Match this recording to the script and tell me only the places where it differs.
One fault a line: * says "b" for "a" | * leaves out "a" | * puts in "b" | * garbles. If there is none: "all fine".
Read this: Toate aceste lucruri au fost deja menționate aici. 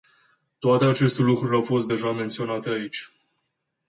all fine